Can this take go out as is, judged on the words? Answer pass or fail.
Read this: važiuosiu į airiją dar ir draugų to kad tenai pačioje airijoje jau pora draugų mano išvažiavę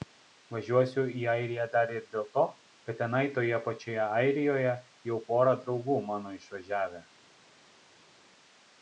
fail